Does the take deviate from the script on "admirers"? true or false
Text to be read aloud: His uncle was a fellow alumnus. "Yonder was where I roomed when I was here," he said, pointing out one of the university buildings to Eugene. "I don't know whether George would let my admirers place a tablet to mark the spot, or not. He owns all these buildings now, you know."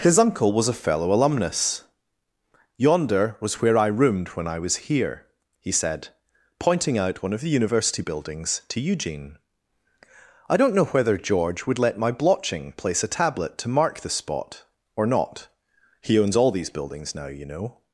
true